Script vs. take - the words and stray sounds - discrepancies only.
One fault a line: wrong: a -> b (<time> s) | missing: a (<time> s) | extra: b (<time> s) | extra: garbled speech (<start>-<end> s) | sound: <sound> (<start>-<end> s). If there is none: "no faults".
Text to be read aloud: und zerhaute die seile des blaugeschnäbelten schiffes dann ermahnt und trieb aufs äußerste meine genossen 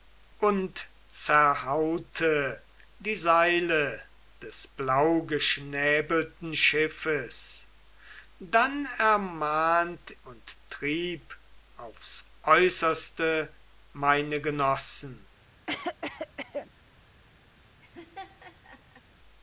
sound: cough (15.7-16.7 s)
sound: laugh (17.8-19.0 s)